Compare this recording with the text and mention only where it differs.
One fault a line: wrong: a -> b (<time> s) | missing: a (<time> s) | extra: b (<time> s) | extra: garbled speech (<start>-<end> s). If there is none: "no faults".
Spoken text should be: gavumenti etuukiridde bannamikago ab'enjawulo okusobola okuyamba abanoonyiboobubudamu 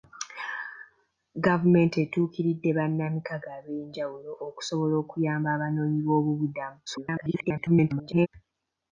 extra: garbled speech (6.9-8.3 s)